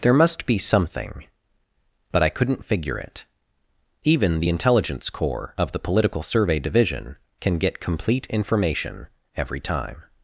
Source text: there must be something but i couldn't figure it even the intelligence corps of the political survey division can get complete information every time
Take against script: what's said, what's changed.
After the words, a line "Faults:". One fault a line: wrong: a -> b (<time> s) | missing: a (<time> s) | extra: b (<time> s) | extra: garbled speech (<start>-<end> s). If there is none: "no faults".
there must be something but i couldn't figure it even the intelligence corps of the political survey division can get complete information every time
Faults:
no faults